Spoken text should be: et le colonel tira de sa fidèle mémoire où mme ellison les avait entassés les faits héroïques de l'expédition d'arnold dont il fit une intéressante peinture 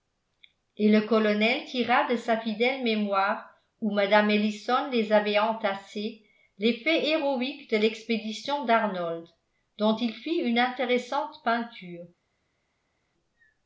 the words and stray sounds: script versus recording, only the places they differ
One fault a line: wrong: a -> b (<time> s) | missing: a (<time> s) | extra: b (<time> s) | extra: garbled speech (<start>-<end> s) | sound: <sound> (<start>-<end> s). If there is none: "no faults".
no faults